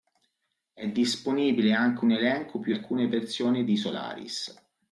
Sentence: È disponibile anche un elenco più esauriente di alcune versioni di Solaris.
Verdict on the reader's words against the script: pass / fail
fail